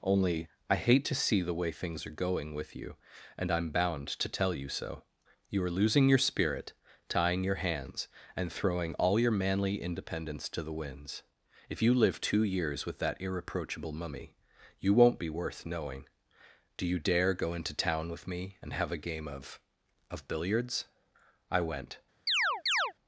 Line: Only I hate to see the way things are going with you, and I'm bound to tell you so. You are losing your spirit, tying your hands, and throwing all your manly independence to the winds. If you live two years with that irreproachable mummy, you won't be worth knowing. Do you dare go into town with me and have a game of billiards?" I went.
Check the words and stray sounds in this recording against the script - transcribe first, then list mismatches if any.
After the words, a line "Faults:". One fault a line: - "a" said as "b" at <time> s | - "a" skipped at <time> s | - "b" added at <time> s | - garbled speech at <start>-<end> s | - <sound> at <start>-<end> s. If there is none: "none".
Only I hate to see the way things are going with you, and I'm bound to tell you so. You are losing your spirit, tying your hands, and throwing all your manly independence to the winds. If you live two years with that irreproachable mummy, you won't be worth knowing. Do you dare go into town with me and have a game of of billiards?" I went.
Faults:
- "of" added at 20.1 s
- chirp at 22.3-22.9 s